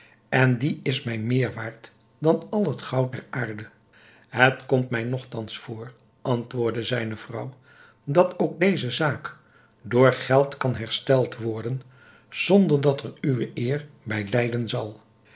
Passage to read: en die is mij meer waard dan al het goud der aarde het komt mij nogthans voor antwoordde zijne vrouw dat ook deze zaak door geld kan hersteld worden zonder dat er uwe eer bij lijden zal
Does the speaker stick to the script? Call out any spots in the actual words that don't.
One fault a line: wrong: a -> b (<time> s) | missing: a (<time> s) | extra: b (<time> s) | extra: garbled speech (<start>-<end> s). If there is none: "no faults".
no faults